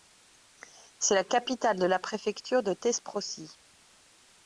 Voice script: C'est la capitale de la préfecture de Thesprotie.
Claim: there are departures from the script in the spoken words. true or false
false